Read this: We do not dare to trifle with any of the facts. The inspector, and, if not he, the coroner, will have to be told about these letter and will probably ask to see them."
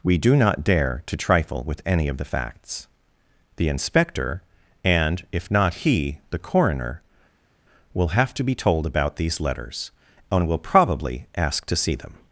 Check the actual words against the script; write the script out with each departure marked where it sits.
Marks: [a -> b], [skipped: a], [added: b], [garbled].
We do not dare to trifle with any of the facts. The inspector, and, if not he, the coroner, will have to be told about these [letter -> letters] and will probably ask to see them."